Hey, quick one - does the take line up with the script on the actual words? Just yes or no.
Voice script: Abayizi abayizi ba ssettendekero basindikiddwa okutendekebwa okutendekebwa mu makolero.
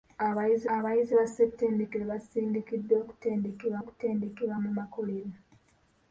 yes